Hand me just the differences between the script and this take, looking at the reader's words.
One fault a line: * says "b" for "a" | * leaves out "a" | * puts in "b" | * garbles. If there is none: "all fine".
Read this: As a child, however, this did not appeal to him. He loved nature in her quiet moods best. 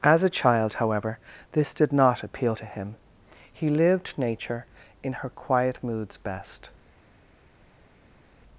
* says "lived" for "loved"